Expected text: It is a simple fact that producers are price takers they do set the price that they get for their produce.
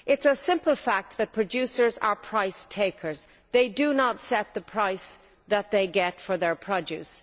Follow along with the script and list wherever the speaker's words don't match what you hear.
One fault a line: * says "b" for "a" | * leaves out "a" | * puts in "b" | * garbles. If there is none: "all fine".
* puts in "not"